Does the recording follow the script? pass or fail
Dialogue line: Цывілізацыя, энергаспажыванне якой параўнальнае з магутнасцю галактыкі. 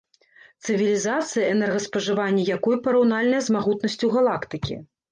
pass